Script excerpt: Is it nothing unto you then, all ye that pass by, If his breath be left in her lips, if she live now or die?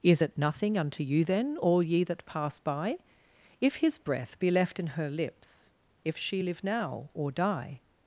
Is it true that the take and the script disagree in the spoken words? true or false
false